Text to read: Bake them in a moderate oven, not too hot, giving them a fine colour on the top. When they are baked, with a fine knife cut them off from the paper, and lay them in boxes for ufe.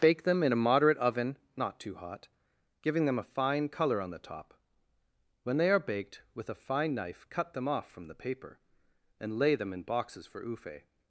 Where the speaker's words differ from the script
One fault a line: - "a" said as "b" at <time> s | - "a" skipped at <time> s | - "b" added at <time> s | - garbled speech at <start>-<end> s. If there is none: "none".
none